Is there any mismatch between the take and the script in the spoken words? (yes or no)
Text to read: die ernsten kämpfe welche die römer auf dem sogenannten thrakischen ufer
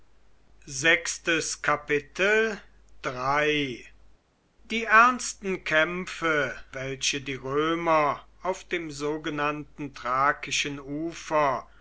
no